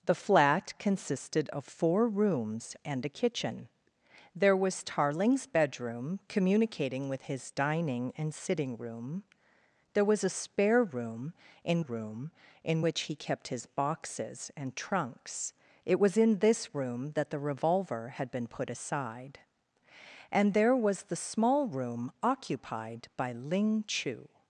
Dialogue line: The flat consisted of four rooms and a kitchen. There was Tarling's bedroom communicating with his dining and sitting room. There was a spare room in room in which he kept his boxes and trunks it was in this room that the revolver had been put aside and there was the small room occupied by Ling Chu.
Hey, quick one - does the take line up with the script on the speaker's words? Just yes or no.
yes